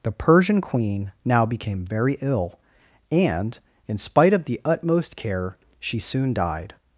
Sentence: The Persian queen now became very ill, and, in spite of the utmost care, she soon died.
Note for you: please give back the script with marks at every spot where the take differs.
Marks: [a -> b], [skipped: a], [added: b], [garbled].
The Persian queen now became very ill, and, in spite of the utmost care, she soon died.